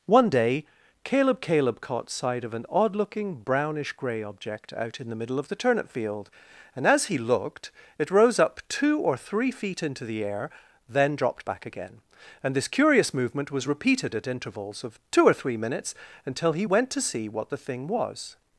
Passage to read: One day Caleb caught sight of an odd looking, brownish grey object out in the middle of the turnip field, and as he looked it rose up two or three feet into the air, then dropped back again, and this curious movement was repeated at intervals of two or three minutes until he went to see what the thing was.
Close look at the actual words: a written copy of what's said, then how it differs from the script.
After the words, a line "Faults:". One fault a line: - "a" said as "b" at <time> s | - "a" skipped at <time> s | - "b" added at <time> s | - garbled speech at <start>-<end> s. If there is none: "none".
One day Caleb Caleb caught sight of an odd looking, brownish grey object out in the middle of the turnip field, and as he looked it rose up two or three feet into the air, then dropped back again, and this curious movement was repeated at intervals of two or three minutes until he went to see what the thing was.
Faults:
- "Caleb" added at 1.4 s